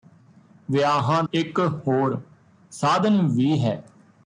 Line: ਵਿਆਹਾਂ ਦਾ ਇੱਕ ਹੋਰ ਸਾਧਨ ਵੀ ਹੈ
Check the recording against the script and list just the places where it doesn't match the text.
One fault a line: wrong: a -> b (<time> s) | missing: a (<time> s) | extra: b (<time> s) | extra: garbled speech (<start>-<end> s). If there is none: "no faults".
missing: ਦਾ (1.2 s)